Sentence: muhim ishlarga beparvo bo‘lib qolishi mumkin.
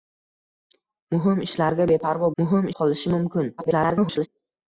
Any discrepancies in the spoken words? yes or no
yes